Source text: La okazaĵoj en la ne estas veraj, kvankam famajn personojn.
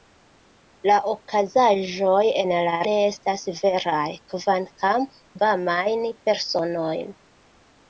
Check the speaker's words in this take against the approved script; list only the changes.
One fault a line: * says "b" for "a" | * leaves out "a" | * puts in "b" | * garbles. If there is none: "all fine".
all fine